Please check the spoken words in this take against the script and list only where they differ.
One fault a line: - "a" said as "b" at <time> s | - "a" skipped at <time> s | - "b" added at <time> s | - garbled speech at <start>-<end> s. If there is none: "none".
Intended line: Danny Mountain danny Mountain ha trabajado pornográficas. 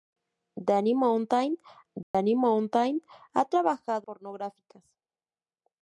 none